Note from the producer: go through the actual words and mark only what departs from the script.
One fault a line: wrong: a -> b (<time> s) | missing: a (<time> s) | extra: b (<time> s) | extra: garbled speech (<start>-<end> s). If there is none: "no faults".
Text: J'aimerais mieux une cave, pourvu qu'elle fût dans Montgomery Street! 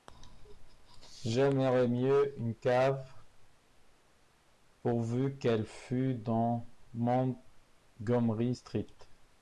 no faults